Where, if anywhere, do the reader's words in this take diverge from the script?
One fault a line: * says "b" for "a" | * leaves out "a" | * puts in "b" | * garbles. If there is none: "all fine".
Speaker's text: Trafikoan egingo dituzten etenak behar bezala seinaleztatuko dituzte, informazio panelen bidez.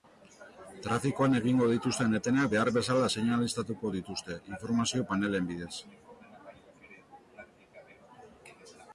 all fine